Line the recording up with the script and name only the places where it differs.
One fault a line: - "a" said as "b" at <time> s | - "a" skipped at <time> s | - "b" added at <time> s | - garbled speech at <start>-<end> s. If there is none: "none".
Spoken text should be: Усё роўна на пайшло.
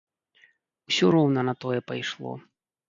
- "тое" added at 1.7 s